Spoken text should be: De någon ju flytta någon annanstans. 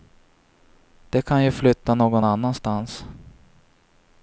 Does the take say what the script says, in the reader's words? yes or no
no